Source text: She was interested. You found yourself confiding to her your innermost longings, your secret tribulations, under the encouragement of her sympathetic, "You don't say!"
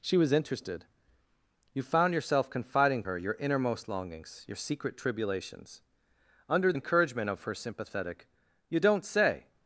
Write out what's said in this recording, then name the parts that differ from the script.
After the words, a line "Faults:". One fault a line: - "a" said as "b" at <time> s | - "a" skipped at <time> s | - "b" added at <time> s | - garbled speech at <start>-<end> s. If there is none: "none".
She was interested. You found yourself confiding her your innermost longings, your secret tribulations, under encouragement of her sympathetic, "You don't say!"
Faults:
- "to" skipped at 3.0 s
- "the" skipped at 6.7 s